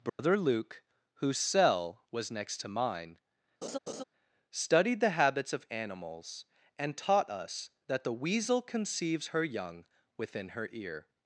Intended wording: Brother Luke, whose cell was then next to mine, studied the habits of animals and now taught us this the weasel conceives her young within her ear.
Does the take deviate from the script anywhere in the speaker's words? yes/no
yes